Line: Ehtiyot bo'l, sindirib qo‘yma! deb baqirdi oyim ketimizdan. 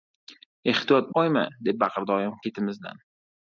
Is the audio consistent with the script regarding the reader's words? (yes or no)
no